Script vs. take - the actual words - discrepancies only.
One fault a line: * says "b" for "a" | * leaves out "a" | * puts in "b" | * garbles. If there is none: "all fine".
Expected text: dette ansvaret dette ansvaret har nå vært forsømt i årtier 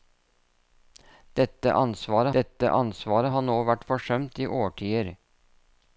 all fine